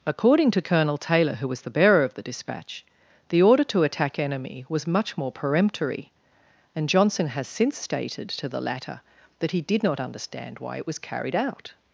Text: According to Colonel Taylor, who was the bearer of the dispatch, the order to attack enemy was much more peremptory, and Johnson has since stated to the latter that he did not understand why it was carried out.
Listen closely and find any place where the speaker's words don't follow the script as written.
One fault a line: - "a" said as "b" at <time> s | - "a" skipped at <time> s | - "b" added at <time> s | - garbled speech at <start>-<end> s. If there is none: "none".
none